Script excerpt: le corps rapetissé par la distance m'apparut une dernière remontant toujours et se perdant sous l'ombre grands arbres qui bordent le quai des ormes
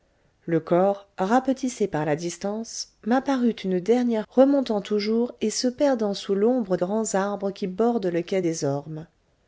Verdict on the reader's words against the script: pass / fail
pass